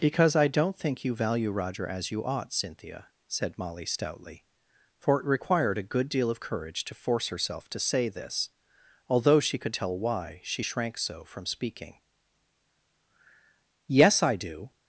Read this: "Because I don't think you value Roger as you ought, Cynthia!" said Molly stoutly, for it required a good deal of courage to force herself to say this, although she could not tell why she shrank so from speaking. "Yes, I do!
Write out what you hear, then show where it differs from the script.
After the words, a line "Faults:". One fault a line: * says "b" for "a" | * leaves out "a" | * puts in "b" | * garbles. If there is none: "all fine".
"Because I don't think you value Roger as you ought, Cynthia!" said Molly stoutly, for it required a good deal of courage to force herself to say this, although she could tell why she shrank so from speaking. "Yes, I do!
Faults:
* leaves out "not"